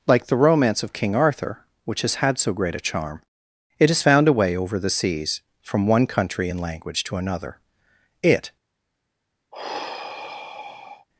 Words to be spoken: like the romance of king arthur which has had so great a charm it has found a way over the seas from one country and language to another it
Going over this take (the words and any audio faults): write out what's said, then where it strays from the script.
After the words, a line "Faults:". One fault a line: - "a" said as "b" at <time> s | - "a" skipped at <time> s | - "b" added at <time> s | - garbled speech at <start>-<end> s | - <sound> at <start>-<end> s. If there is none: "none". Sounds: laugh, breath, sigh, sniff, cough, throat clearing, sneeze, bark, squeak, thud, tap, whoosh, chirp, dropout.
like the romance of king arthur which has had so great a charm it has found a way over the seas from one country and language to another it
Faults:
- sigh at 9.5-11.1 s